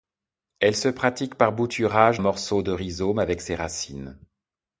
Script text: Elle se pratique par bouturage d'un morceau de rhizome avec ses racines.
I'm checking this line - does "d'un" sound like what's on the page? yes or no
no